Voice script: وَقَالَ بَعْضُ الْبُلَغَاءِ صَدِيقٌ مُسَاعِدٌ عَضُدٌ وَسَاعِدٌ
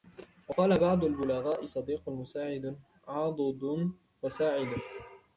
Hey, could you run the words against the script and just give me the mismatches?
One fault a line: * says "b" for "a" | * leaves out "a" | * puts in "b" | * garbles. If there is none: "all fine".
all fine